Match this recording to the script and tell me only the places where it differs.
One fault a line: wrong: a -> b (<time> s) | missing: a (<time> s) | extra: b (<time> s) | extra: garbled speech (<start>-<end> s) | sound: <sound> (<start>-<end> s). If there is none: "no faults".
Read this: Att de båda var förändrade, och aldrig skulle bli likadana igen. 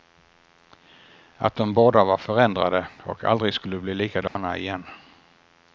sound: dropout (4.3-4.4 s)